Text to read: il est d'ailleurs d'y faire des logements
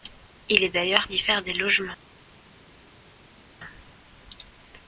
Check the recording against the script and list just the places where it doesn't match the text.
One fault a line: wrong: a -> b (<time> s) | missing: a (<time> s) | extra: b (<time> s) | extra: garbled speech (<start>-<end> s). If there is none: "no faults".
no faults